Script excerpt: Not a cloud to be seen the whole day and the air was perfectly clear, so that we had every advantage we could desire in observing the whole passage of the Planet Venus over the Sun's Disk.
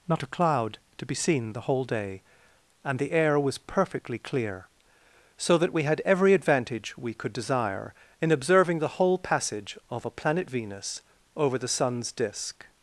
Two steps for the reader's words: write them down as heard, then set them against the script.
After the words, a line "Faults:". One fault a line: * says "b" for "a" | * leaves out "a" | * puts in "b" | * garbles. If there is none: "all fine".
Not a cloud to be seen the whole day and the air was perfectly clear, so that we had every advantage we could desire in observing the whole passage of a Planet Venus over the Sun's Disk.
Faults:
* says "a" for "the"